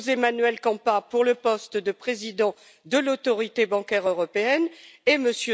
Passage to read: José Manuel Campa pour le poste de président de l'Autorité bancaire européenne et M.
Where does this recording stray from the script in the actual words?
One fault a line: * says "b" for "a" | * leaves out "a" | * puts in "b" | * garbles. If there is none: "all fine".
all fine